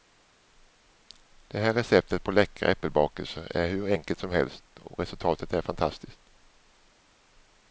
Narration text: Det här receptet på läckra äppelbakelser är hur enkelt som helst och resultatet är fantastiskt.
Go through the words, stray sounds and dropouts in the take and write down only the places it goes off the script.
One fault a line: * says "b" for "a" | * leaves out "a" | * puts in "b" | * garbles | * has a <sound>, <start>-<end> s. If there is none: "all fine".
all fine